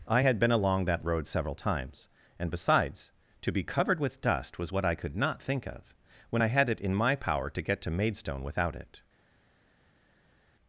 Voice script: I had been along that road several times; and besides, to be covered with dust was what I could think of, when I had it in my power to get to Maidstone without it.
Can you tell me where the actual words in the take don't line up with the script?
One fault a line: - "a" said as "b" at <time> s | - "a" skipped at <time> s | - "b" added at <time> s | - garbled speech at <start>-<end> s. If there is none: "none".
- "not" added at 5.2 s